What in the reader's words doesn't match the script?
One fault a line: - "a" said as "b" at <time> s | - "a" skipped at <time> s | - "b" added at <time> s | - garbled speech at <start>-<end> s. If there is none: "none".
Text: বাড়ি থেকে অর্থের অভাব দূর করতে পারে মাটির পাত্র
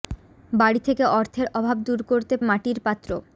- "পারে" skipped at 2.4 s